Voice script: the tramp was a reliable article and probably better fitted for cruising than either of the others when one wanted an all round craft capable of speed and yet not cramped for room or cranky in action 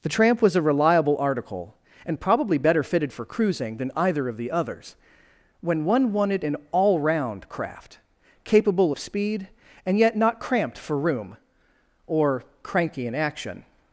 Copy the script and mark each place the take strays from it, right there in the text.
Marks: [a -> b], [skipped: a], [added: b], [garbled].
the tramp was a reliable article and probably better fitted for cruising than either of the others when one wanted an all round craft capable of speed and yet not cramped for room or cranky in action